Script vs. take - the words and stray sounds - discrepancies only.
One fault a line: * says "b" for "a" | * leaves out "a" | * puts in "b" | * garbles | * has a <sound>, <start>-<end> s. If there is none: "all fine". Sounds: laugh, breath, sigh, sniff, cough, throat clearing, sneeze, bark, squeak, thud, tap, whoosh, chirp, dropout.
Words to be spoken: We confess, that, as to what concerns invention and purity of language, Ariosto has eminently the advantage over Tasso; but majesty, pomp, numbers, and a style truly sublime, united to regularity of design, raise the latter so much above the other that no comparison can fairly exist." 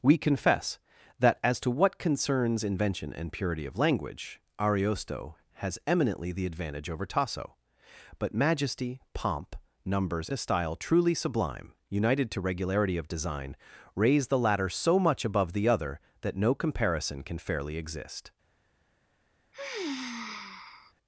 * leaves out "and"
* has a sigh, 19.5-20.9 s